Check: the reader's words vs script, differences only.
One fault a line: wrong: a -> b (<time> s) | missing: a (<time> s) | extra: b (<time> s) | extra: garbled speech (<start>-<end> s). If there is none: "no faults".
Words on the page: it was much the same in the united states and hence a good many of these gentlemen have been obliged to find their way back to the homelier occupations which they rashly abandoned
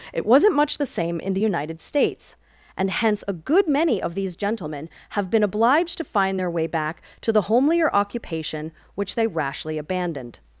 wrong: was -> wasn't (0.2 s)
wrong: occupations -> occupation (7.9 s)